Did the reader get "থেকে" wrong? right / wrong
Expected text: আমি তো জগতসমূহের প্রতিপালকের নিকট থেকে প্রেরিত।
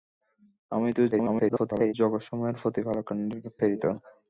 wrong